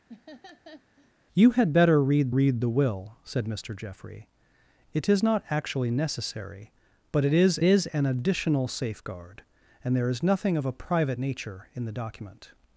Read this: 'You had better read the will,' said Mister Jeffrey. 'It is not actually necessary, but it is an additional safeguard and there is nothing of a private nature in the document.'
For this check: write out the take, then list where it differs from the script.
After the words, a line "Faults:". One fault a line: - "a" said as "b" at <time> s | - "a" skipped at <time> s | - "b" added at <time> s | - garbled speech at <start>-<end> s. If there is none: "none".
'You had better read read the will,' said Mister Jeffrey. 'It is not actually necessary, but it is is an additional safeguard and there is nothing of a private nature in the document.'
Faults:
- "read" added at 2.3 s
- "is" added at 7.6 s